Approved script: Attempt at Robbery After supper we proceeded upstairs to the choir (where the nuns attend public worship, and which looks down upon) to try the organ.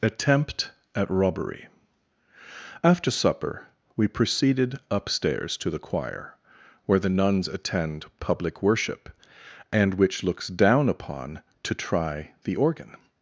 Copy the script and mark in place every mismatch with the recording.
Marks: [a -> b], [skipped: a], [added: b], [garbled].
Attempt at Robbery After supper we proceeded upstairs to the choir (where the nuns attend public worship, and which looks down upon) to try the organ.